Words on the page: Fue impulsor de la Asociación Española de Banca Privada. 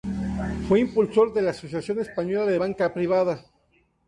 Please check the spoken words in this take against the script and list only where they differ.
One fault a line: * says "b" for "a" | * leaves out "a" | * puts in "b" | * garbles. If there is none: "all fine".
all fine